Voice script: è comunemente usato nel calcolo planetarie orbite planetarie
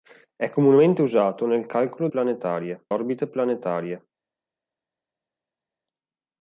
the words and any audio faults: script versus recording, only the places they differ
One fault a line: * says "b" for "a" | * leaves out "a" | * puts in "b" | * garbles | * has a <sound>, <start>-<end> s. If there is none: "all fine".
all fine